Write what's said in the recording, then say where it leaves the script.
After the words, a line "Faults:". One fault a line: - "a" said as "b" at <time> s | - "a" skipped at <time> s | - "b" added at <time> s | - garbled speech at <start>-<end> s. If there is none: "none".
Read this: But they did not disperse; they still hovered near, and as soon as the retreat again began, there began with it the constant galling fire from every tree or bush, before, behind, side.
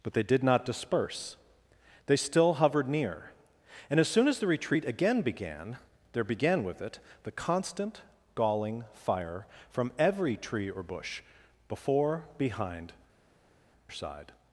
But they did not disperse; they still hovered near, and as soon as the retreat again began, there began with it the constant galling fire from every tree or bush, before, behind, side.
Faults:
none